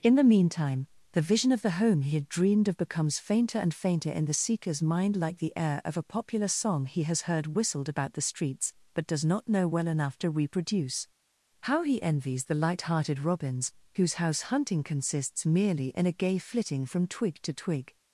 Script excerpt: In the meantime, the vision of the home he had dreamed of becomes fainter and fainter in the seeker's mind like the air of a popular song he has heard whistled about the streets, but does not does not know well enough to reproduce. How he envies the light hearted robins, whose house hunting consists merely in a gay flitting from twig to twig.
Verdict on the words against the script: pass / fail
fail